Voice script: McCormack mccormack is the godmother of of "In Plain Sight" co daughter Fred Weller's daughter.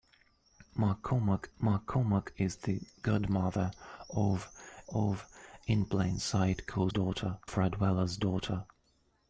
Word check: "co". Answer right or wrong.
right